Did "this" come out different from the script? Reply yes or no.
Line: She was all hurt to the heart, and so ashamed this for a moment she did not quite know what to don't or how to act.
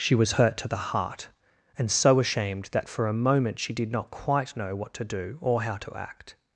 yes